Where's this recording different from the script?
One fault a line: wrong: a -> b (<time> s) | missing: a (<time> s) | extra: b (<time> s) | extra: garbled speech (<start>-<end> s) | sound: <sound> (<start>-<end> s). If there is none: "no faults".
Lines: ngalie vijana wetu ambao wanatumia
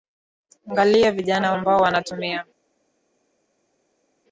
missing: wetu (1.5 s)